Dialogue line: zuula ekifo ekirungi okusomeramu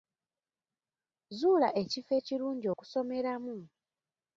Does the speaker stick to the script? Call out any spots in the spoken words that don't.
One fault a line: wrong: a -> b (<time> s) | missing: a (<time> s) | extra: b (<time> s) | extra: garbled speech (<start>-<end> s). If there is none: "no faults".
no faults